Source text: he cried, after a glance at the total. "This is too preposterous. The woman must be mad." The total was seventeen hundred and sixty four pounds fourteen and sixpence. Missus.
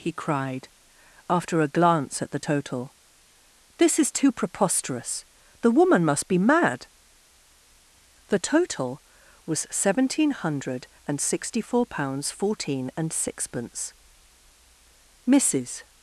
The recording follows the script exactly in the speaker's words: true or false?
true